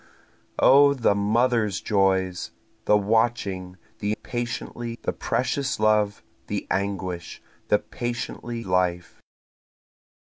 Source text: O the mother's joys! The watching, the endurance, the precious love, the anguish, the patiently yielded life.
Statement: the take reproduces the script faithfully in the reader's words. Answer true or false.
false